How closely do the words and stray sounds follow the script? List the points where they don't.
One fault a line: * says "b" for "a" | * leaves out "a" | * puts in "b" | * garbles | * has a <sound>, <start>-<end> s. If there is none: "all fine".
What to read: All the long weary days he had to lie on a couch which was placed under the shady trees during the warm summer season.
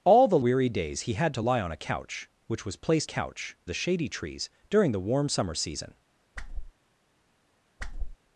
* leaves out "long"
* says "couch" for "under"
* has a whoosh, 6.3-6.7 s
* has a whoosh, 7.8-8.2 s